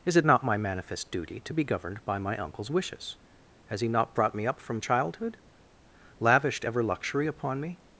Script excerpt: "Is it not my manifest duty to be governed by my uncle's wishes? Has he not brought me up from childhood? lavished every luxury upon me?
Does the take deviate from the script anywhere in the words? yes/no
yes